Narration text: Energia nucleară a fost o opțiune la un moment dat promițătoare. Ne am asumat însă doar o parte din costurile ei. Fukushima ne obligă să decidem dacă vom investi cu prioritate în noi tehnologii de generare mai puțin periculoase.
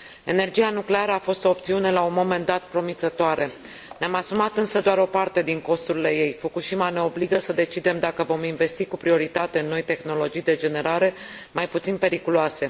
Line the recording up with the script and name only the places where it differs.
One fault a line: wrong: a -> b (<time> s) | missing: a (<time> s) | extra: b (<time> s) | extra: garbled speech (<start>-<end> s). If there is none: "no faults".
no faults